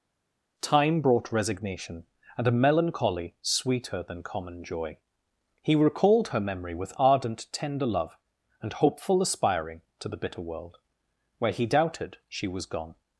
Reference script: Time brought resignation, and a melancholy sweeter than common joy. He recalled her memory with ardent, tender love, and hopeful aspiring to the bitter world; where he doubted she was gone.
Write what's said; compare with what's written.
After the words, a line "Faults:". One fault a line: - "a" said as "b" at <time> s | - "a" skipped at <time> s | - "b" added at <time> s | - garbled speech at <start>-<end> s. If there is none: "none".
Time brought resignation, and a melancholy sweeter than common joy. He recalled her memory with ardent, tender love, and hopeful aspiring to the bitter world; where he doubted she was gone.
Faults:
none